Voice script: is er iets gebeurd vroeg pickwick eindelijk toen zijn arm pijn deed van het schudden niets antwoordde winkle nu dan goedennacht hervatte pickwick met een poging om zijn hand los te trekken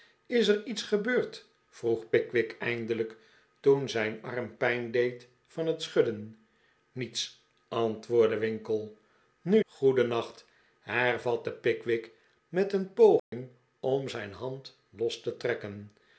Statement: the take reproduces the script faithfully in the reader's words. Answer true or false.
false